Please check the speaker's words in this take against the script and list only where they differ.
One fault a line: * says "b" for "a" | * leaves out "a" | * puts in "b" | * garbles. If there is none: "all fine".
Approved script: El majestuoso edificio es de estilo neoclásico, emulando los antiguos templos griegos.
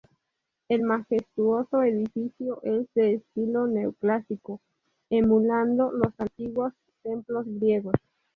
all fine